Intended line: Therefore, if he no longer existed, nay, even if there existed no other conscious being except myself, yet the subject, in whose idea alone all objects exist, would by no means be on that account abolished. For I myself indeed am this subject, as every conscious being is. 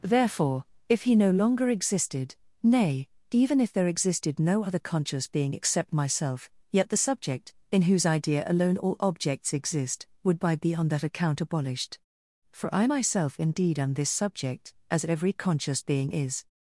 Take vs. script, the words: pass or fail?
fail